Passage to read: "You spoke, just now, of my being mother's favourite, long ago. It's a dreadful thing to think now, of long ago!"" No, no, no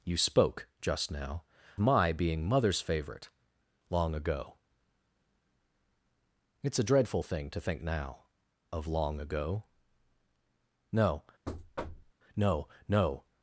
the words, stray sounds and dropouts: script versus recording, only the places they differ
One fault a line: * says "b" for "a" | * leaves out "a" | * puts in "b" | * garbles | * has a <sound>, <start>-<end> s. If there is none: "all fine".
* leaves out "of"
* has a thud, 11.5-12.1 s